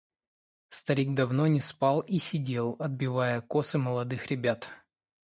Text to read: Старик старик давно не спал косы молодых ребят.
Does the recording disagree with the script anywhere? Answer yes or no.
yes